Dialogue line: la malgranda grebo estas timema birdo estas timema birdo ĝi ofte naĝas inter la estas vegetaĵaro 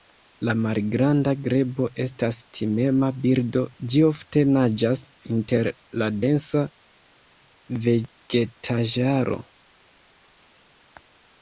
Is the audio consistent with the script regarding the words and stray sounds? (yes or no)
no